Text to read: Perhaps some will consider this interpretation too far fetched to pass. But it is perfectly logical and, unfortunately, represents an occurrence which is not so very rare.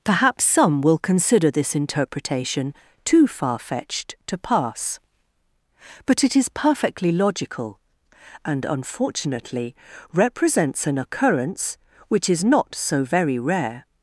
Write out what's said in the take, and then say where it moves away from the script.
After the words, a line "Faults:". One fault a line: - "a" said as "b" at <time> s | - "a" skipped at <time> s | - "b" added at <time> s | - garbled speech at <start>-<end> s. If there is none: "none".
Perhaps some will consider this interpretation too far fetched to pass. But it is perfectly logical and, unfortunately, represents an occurrence which is not so very rare.
Faults:
none